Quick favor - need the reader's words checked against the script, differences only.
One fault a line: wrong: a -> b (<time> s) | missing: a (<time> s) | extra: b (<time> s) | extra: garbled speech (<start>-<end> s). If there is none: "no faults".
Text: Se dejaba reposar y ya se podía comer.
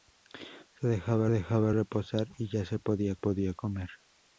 extra: dejaba (1.3 s)
extra: podía (3.1 s)